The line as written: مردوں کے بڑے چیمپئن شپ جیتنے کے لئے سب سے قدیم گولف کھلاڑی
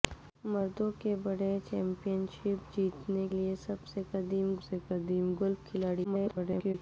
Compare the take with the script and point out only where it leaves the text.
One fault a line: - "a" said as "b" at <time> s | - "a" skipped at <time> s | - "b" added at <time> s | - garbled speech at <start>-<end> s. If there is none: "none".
- "کے" skipped at 3.3 s
- "سے قدیم" added at 4.6 s
- garbled speech at 6.0-6.7 s